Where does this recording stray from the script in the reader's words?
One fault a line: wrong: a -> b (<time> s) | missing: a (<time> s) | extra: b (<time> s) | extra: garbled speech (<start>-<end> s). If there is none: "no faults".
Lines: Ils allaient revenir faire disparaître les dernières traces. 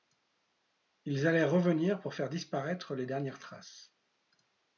extra: pour (2.0 s)